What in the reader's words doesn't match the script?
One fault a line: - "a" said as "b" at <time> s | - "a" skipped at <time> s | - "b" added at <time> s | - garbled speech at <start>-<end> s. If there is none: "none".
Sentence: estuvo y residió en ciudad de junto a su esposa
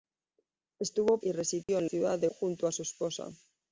none